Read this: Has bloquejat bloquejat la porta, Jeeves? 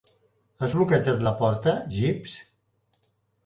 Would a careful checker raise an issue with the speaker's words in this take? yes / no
yes